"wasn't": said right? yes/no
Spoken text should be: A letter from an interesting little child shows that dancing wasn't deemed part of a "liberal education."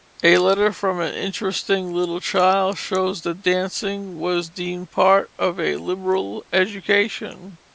no